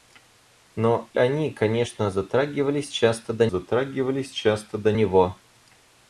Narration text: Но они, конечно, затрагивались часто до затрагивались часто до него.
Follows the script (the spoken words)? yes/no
yes